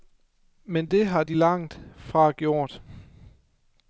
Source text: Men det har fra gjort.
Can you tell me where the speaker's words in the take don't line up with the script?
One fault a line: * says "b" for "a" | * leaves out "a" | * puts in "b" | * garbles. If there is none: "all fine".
* puts in "de langt"